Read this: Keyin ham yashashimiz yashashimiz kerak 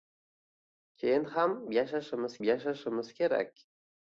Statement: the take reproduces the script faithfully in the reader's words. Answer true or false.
true